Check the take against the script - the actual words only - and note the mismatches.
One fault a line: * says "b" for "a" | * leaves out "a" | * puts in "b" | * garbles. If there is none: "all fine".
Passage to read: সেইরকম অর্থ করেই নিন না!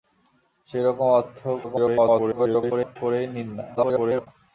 * garbles
* garbles